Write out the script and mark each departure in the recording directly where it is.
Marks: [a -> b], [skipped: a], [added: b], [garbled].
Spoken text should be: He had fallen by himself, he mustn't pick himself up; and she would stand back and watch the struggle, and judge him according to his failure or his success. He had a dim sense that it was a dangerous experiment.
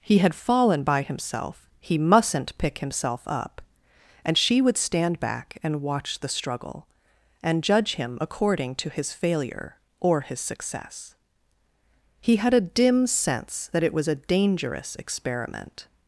He had fallen by himself, he mustn't pick himself up; and she would stand back and watch the struggle, and judge him according to his failure or his success. He had a dim sense that it was a dangerous experiment.